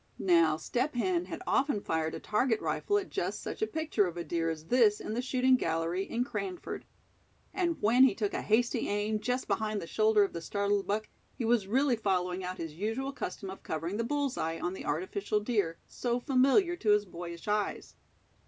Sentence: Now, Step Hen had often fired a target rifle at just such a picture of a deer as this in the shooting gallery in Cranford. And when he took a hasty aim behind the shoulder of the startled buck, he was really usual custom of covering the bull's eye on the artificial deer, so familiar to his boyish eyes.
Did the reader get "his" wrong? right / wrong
right